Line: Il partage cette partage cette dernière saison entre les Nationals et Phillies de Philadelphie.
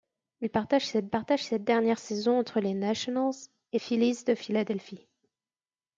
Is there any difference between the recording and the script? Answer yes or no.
no